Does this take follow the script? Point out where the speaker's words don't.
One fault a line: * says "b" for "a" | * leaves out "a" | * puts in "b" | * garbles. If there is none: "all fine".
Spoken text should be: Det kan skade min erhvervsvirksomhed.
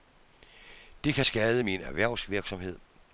all fine